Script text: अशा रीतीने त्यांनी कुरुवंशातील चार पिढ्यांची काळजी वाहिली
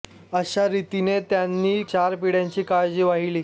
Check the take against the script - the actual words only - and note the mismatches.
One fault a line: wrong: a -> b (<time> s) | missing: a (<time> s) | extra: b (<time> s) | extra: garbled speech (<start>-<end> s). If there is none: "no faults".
missing: कुरुवंशातील (1.8 s)